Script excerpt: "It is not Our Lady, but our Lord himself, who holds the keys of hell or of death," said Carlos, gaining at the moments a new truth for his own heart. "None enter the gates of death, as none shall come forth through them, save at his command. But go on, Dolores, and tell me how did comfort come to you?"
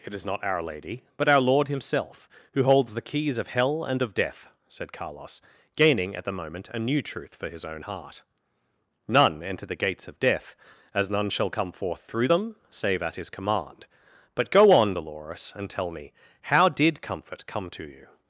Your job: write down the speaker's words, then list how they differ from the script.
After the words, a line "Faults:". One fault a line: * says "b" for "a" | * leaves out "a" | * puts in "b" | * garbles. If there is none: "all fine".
"It is not Our Lady, but our Lord himself, who holds the keys of hell and of death," said Carlos, gaining at the moment a new truth for his own heart. "None enter the gates of death, as none shall come forth through them, save at his command. But go on, Dolores, and tell me how did comfort come to you?"
Faults:
* says "and" for "or"
* says "moment" for "moments"